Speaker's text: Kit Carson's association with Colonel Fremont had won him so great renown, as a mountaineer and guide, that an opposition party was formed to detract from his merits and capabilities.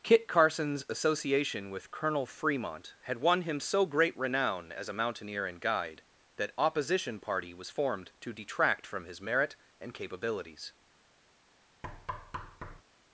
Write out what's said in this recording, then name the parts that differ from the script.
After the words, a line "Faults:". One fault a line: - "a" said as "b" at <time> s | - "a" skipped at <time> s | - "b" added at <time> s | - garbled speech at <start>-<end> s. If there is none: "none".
Kit Carson's association with Colonel Fremont had won him so great renown, as a mountaineer and guide, that opposition party was formed to detract from his merit and capabilities.
Faults:
- "an" skipped at 6.5 s
- "merits" said as "merit" at 9.2 s